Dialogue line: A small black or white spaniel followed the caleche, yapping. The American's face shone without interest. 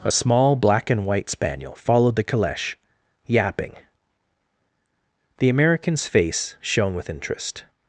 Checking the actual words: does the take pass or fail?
fail